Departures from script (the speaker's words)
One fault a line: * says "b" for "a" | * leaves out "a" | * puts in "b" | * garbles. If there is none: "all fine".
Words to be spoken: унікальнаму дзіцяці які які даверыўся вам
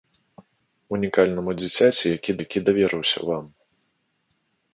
all fine